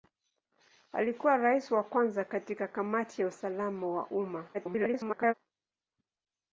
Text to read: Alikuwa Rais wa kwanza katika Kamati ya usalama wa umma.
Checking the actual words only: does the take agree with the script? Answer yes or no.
no